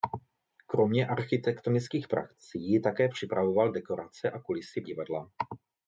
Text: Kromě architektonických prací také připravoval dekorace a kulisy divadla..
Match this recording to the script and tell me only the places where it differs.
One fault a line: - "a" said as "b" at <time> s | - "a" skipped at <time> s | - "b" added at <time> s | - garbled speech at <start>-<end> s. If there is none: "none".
none